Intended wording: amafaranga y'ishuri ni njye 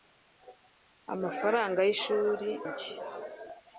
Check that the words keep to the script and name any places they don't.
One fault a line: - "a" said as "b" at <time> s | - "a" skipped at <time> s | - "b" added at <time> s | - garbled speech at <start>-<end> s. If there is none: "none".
- "ni" skipped at 2.5 s